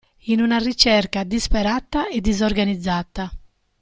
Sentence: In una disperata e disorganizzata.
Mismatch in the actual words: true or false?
true